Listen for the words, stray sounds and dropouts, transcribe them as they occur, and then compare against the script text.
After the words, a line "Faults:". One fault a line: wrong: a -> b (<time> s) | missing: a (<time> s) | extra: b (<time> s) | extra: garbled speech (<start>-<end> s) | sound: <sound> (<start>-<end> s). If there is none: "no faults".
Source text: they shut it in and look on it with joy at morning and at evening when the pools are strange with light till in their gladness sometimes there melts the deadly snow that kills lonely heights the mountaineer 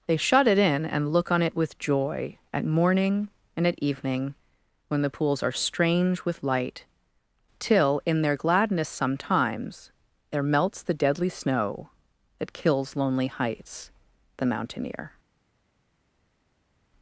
they shut it in and look on it with joy at morning and at evening when the pools are strange with light till in their gladness sometimes there melts the deadly snow that kills lonely heights the mountaineer
Faults:
no faults